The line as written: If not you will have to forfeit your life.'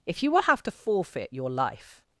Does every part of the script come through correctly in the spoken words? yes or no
no